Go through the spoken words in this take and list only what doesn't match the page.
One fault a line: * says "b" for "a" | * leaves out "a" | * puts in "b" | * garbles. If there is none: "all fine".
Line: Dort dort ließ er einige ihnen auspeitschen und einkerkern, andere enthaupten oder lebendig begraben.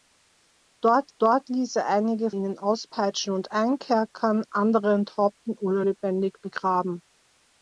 all fine